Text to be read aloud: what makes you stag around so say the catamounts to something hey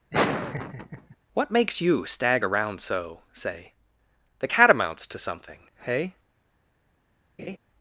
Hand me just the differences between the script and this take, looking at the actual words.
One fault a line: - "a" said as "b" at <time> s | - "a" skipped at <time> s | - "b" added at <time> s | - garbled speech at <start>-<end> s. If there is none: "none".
none